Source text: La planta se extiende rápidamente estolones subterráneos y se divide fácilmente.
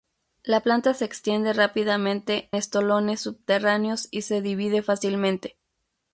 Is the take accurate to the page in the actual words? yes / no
yes